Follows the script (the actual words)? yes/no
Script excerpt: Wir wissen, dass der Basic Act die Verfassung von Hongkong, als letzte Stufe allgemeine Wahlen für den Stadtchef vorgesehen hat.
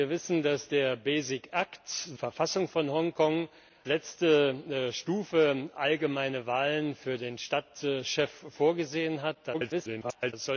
no